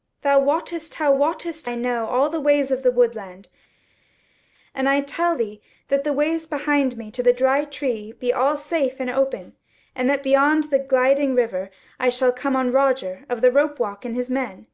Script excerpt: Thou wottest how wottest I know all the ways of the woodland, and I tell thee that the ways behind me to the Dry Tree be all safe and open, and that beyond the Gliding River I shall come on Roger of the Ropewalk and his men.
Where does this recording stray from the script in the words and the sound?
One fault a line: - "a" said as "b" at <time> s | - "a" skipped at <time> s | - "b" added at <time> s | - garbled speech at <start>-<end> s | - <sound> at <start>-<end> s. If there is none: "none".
none